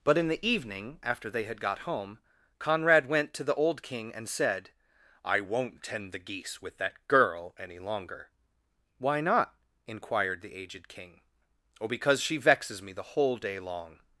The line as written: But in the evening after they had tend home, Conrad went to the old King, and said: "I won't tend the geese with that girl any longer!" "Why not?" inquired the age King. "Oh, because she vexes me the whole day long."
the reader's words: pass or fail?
fail